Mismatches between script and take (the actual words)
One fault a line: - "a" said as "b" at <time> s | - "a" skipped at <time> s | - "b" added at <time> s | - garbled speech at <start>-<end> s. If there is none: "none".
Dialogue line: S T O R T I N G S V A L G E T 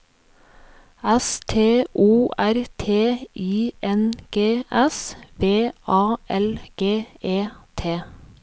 none